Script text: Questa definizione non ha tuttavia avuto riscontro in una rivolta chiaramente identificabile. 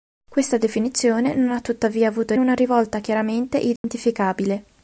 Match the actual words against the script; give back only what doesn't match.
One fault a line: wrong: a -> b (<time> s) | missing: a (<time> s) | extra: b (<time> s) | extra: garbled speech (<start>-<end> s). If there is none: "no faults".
missing: riscontro in (2.3 s)